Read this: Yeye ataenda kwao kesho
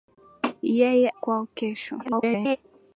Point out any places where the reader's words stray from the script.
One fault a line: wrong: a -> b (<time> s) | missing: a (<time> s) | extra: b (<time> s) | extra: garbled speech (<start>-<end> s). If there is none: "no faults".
missing: ataenda (1.1 s)
extra: garbled speech (2.0-2.6 s)